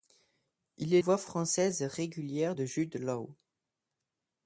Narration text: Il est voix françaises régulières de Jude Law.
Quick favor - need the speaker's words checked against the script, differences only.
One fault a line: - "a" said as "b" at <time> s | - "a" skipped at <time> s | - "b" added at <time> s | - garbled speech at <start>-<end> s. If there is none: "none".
none